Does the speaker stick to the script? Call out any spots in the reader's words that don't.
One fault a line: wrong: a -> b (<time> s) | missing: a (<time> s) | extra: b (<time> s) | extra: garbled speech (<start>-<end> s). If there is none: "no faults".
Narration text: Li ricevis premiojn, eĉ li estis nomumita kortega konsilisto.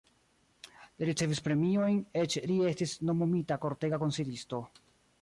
no faults